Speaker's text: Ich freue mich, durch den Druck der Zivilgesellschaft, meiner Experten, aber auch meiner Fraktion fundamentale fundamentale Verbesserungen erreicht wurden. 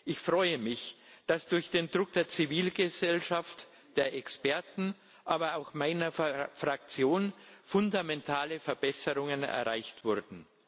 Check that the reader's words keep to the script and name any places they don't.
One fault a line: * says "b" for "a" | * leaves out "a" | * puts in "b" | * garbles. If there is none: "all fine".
* puts in "dass"
* says "der" for "meiner"
* leaves out "fundamentale"